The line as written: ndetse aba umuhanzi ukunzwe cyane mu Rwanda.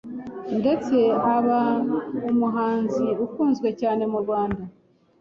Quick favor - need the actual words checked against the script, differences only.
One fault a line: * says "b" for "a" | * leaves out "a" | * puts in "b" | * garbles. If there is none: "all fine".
all fine